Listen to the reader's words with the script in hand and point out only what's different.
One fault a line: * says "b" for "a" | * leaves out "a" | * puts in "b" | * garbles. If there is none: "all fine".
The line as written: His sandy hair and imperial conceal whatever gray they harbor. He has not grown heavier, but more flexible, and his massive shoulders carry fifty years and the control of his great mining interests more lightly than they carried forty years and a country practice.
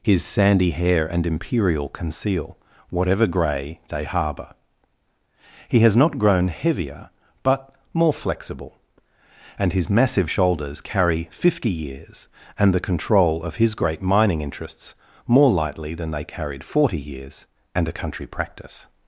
all fine